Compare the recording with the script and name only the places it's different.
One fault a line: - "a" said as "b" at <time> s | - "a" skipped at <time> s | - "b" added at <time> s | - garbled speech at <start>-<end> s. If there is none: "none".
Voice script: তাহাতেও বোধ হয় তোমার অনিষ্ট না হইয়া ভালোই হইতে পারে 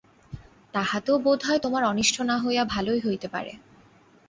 none